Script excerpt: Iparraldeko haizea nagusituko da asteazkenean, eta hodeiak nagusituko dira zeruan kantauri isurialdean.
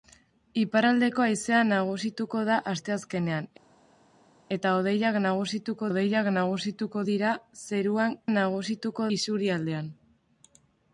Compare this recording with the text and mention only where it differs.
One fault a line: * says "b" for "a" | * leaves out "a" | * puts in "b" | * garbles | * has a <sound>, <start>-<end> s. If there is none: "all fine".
* puts in "hodeiak nagusituko"
* says "nagusituko" for "kantauri"